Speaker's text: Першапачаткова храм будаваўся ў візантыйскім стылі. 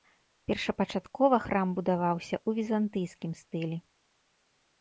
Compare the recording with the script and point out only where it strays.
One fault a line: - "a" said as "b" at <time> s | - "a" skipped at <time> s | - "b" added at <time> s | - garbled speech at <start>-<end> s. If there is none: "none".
none